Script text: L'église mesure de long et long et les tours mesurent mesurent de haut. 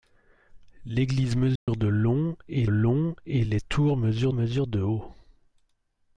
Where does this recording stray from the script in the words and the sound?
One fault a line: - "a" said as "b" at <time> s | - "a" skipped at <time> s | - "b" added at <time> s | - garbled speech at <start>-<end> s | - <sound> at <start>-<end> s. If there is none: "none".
- dropout at 1.6-1.7 s